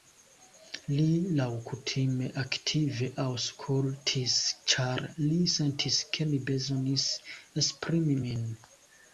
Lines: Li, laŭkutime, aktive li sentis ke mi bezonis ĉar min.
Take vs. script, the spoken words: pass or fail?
fail